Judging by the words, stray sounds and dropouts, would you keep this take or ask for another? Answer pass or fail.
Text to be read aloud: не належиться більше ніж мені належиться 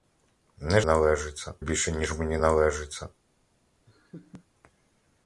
fail